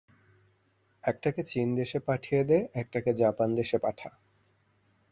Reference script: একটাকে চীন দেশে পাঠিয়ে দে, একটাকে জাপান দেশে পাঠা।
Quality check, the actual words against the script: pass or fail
pass